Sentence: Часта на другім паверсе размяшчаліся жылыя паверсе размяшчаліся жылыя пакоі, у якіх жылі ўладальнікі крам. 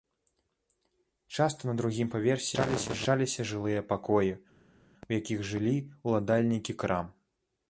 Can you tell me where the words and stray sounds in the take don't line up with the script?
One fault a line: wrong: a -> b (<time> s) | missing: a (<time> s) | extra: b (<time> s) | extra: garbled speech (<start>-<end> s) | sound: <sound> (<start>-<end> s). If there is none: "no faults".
missing: паверсе размяшчаліся жылыя (3.9 s)